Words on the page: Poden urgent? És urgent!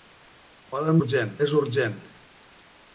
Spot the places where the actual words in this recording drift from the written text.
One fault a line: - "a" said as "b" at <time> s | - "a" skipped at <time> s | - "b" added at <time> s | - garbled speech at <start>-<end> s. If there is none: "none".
none